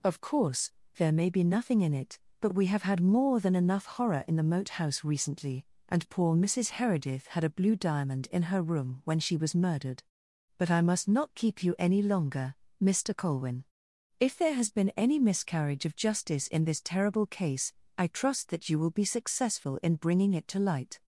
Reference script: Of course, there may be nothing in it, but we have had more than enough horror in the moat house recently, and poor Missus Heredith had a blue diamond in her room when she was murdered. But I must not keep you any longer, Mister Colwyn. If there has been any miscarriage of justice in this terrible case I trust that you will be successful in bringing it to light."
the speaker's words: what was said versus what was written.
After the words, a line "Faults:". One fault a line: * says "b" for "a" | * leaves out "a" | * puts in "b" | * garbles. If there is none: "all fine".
Of course, there may be nothing in it, but we have had more than enough horror in the moat house recently, and poor Missus Heredith had a blue diamond in her room when she was murdered. But I must not keep you any longer, Mister Colwyn. If there has been any miscarriage of justice in this terrible case I trust that you will be successful in bringing it to light."
Faults:
all fine